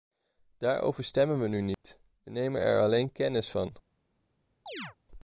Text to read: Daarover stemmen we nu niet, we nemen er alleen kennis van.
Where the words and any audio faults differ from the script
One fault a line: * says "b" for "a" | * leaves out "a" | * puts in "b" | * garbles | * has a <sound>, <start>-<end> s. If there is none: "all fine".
* has a dropout, 1.7-1.8 s
* has a chirp, 4.7-5.0 s